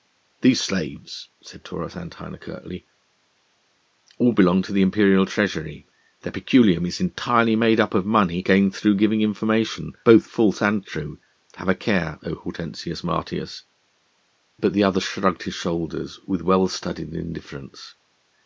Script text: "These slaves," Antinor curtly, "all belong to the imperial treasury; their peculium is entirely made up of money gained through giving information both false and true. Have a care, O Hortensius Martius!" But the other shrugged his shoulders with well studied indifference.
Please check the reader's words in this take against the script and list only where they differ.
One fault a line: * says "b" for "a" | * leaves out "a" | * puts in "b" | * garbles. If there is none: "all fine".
* puts in "said Taurus"